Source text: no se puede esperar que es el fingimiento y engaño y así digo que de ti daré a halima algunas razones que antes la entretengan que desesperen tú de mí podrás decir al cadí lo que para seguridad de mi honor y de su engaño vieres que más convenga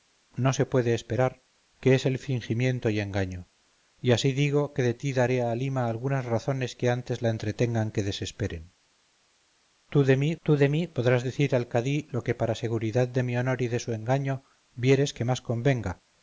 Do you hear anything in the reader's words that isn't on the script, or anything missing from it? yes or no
yes